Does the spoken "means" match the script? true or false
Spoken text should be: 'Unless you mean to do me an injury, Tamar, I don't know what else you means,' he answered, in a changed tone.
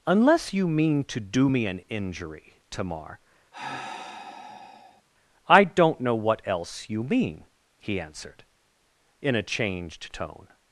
false